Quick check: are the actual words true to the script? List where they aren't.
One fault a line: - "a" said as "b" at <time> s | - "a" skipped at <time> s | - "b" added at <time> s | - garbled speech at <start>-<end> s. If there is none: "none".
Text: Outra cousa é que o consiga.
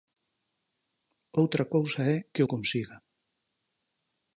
none